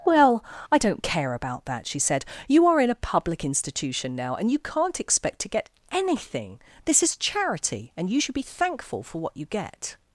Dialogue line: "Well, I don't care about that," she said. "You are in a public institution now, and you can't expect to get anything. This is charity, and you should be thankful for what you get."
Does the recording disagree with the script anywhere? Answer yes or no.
no